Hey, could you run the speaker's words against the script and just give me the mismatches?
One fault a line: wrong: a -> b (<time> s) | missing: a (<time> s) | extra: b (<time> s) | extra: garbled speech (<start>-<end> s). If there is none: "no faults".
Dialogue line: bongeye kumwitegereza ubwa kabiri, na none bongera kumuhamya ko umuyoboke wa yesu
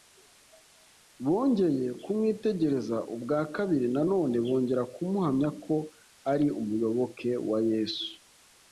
extra: ari (6.3 s)